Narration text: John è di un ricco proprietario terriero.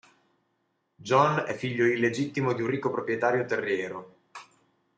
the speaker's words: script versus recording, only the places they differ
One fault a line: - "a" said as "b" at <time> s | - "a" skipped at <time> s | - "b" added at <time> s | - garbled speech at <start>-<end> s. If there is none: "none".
- "figlio illegittimo" added at 1.5 s